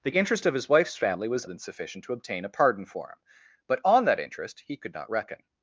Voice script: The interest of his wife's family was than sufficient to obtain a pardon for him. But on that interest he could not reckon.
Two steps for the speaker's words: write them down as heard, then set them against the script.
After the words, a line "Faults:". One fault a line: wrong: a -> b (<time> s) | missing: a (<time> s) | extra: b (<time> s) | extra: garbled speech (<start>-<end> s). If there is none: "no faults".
The interest of his wife's family was than sufficient to obtain a pardon for him. But on that interest he could not reckon.
Faults:
no faults